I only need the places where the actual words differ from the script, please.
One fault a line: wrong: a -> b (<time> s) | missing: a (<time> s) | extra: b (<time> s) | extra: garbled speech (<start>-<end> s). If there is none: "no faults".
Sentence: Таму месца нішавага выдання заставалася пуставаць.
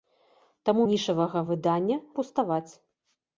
missing: месца (0.8 s)
missing: заставалася (2.0 s)